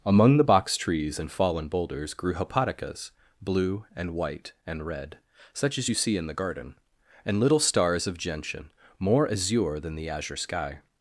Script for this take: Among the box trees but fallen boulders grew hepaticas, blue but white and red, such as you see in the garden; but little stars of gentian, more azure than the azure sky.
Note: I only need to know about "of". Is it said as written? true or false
true